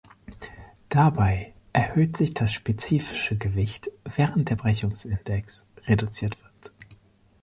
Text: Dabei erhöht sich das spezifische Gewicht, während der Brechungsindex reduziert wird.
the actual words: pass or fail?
pass